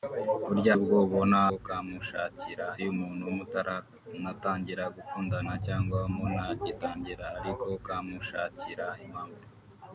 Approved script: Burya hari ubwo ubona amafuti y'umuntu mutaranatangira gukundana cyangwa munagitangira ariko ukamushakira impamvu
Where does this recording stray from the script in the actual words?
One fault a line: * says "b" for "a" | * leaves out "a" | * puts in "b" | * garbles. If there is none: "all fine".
* leaves out "hari"
* says "ukamushakira" for "amafuti"